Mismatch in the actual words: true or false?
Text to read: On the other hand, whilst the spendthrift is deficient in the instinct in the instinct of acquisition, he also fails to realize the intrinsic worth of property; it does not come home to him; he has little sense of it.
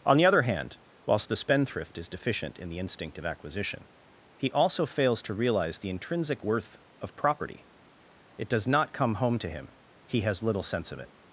true